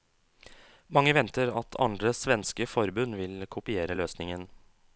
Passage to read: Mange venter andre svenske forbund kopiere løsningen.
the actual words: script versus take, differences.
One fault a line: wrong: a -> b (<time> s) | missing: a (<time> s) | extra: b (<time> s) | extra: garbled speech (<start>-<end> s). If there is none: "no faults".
extra: at (1.6 s)
extra: vil (3.2 s)